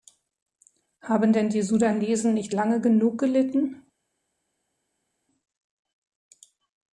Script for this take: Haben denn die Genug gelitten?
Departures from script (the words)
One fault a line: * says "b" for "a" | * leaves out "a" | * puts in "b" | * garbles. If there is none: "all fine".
* puts in "Sudanesen nicht lange"